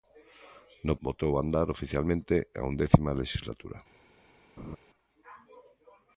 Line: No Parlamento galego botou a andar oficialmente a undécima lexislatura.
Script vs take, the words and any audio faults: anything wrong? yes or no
yes